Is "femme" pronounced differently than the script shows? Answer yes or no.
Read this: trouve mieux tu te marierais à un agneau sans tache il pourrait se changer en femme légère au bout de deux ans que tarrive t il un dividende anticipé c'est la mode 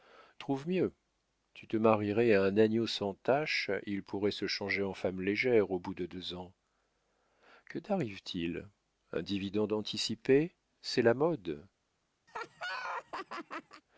no